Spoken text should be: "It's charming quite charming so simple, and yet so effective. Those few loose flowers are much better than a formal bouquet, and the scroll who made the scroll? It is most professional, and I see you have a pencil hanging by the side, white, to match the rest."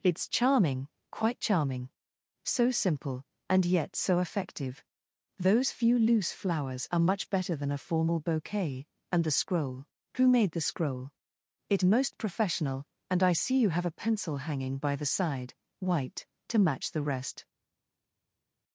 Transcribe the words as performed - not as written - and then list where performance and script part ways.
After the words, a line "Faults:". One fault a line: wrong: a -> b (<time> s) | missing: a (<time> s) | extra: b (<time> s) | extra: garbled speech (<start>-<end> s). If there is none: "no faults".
"It's charming quite charming so simple, and yet so effective. Those few loose flowers are much better than a formal bouquet, and the scroll who made the scroll? It most professional, and I see you have a pencil hanging by the side, white, to match the rest."
Faults:
missing: is (11.8 s)